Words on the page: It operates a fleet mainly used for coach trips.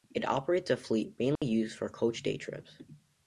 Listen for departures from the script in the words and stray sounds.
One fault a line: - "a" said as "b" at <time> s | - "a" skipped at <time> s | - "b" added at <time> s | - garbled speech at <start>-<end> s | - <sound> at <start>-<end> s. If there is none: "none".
- dropout at 1.4-1.4 s
- "day" added at 2.2 s